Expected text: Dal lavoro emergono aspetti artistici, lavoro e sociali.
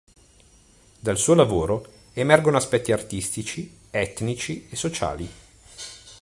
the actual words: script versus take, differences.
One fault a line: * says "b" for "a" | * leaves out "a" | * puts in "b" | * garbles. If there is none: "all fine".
* puts in "suo"
* says "etnici" for "lavoro"